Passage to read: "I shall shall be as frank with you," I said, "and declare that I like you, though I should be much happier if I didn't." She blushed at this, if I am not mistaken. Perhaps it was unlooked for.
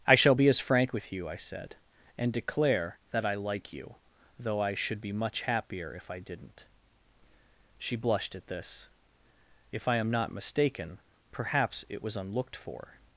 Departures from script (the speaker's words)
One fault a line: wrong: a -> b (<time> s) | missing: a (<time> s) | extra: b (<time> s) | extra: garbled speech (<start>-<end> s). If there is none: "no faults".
missing: shall (0.3 s)